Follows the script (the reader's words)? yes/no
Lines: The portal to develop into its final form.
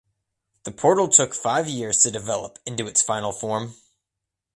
no